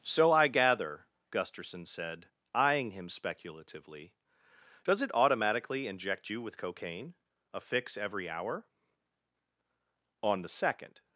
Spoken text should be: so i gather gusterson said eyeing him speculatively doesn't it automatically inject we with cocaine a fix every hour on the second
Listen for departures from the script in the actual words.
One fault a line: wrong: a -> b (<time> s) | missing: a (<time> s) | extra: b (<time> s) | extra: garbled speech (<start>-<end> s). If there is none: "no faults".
wrong: doesn't -> does (4.8 s)
wrong: we -> you (6.3 s)